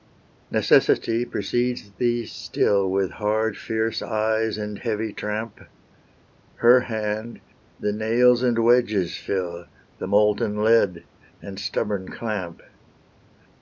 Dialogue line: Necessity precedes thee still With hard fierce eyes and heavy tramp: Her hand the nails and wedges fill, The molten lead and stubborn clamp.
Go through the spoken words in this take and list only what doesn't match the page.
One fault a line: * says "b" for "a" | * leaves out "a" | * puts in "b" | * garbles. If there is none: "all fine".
all fine